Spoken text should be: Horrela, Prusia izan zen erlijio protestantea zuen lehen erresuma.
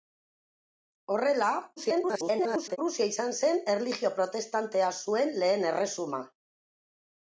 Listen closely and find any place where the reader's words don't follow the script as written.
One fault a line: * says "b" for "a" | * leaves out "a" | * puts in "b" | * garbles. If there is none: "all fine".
* garbles